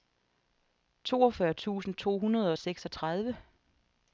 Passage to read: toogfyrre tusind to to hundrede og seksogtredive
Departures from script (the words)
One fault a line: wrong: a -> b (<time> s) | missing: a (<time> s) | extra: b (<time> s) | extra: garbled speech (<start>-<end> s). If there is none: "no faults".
missing: to (2.2 s)